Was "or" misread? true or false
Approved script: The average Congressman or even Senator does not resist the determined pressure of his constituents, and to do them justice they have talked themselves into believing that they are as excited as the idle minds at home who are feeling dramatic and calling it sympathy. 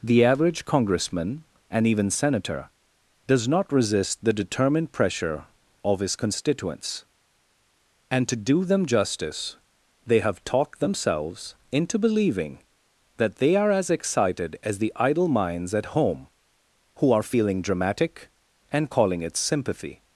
true